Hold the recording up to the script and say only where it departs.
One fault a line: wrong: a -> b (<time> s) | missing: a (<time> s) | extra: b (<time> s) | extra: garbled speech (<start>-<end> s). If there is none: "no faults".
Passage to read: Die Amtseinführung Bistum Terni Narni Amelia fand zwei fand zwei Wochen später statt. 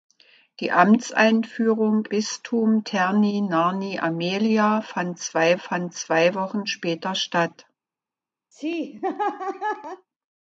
no faults